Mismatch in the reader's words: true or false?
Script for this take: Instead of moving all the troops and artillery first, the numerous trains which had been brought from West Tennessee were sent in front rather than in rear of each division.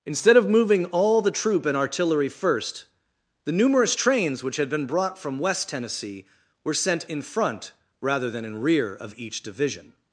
true